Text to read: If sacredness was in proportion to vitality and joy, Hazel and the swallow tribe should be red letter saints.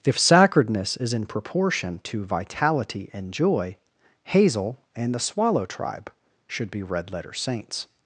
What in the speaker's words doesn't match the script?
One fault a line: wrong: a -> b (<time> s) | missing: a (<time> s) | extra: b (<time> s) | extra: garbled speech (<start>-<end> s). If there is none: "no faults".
wrong: was -> is (1.0 s)